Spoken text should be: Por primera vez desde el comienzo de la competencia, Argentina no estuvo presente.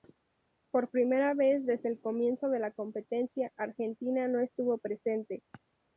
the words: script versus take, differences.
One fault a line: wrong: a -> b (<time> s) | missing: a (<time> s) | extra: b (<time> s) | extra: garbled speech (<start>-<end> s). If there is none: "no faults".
no faults